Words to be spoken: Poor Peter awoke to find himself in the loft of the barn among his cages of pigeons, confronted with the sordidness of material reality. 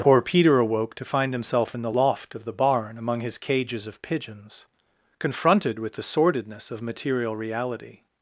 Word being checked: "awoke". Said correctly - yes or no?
yes